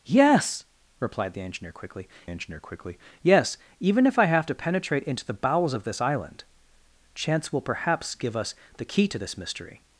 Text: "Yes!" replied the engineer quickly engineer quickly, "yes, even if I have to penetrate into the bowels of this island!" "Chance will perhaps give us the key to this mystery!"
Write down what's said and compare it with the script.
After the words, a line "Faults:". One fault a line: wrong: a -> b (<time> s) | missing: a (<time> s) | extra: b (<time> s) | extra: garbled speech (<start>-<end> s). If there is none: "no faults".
"Yes!" replied the engineer quickly engineer quickly, "yes, even if I have to penetrate into the bowels of this island!" "Chance will perhaps give us the key to this mystery!"
Faults:
no faults